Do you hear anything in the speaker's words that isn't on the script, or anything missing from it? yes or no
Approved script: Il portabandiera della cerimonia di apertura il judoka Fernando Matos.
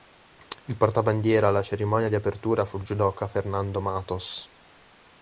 yes